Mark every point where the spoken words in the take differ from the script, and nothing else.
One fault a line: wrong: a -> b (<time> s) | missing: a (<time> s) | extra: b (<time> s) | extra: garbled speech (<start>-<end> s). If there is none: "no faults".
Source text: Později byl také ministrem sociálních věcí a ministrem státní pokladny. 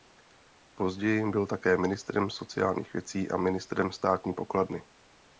no faults